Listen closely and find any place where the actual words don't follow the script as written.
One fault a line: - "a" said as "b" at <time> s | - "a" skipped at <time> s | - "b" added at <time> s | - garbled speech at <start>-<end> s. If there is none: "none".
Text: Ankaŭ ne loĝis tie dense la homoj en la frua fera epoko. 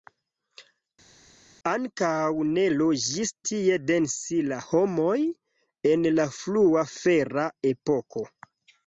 none